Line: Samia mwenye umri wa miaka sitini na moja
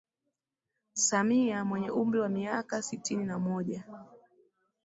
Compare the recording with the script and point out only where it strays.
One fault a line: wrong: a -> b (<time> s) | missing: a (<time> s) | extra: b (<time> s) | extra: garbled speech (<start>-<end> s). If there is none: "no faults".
no faults